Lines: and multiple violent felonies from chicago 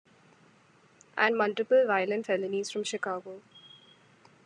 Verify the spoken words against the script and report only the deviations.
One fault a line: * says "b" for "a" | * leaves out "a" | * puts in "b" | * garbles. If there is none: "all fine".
all fine